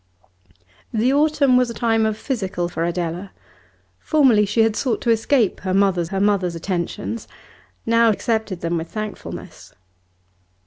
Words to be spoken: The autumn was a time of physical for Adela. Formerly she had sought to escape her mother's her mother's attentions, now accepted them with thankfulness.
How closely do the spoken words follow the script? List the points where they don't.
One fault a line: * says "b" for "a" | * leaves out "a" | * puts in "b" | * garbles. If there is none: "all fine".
all fine